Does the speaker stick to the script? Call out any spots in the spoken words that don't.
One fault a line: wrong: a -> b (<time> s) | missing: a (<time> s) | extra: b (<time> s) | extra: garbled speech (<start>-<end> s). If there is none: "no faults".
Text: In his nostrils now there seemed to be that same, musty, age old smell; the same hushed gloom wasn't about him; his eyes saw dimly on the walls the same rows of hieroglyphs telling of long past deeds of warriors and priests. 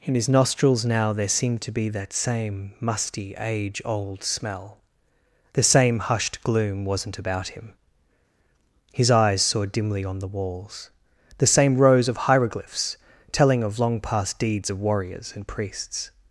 no faults